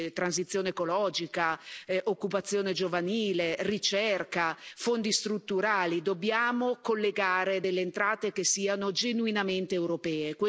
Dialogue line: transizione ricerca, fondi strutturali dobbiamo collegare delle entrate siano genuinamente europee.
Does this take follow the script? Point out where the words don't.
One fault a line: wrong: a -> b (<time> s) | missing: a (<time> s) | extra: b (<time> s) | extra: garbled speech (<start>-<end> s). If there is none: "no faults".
extra: ecologica occupazione giovanile (0.7 s)
extra: che (8.3 s)